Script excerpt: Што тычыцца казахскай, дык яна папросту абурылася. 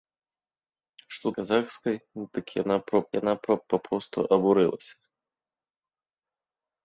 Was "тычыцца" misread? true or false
true